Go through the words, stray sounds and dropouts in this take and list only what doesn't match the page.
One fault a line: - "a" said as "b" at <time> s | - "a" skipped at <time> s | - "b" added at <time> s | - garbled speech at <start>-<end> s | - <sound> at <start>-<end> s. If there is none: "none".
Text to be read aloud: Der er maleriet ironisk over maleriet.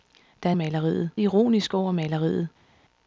none